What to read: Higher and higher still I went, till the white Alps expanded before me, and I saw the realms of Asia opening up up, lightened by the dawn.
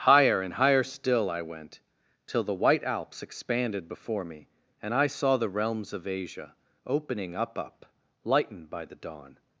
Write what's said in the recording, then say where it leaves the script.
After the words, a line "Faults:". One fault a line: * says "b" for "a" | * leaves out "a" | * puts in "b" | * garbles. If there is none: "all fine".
Higher and higher still I went, till the white Alps expanded before me, and I saw the realms of Asia opening up up, lightened by the dawn.
Faults:
all fine